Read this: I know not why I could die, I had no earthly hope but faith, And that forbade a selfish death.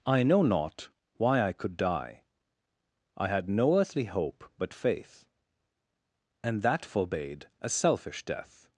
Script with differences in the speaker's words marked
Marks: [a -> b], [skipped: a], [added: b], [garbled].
I know not why I could die, I had no earthly hope but faith, And that forbade a selfish death.